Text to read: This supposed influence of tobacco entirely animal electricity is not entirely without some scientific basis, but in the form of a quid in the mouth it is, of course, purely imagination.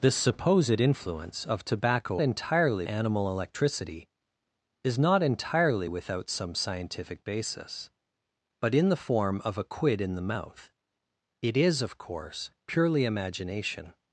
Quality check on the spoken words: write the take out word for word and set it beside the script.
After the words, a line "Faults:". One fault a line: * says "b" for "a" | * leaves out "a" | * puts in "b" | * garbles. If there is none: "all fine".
This supposed influence of tobacco entirely animal electricity is not entirely without some scientific basis, but in the form of a quid in the mouth it is, of course, purely imagination.
Faults:
all fine